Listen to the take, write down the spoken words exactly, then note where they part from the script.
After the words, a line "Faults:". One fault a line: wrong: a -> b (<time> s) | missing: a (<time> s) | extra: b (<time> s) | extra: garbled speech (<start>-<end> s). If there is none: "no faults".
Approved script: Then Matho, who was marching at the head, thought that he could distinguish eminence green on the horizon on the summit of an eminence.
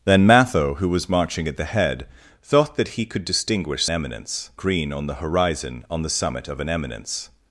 Then Matho, who was marching at the head, thought that he could distinguish eminence green on the horizon on the summit of an eminence.
Faults:
no faults